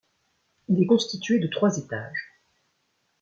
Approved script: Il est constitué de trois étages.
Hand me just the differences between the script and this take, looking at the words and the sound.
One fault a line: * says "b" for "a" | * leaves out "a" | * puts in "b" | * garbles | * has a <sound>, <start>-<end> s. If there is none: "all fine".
all fine